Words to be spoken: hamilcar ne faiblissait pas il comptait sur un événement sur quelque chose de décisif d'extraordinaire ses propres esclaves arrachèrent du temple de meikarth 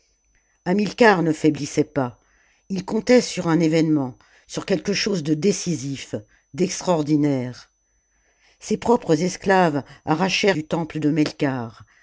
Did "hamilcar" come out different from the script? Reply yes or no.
no